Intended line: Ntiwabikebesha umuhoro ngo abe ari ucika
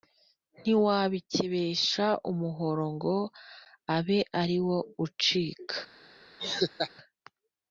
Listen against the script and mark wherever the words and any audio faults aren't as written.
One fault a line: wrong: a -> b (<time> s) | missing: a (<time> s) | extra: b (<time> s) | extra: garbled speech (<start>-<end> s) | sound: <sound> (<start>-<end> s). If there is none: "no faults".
extra: wo (4.7 s)
sound: laugh (6.4-6.9 s)